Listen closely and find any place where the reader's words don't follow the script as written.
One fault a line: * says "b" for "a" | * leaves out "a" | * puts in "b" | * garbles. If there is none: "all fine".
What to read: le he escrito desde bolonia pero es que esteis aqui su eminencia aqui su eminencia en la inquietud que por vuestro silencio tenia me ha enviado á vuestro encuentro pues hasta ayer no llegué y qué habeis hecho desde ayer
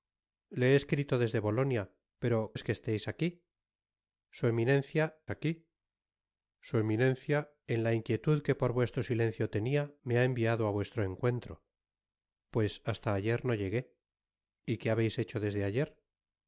all fine